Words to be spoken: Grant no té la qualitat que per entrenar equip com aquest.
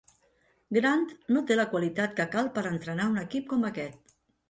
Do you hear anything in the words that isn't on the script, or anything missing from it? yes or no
yes